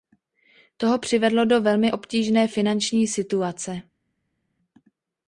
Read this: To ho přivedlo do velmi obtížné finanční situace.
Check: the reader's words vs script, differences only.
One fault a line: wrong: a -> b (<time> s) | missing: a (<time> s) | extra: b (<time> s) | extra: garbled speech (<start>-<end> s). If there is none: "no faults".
no faults